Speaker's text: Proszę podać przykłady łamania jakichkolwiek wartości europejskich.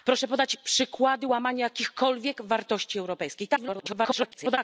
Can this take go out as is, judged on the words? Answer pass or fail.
fail